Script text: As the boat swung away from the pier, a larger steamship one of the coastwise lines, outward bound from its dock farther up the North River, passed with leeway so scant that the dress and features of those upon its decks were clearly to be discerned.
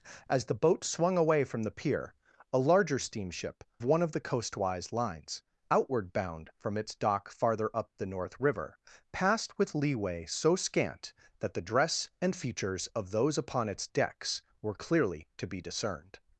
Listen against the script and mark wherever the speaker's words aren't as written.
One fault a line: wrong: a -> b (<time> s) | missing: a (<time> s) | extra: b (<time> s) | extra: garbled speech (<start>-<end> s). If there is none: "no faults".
no faults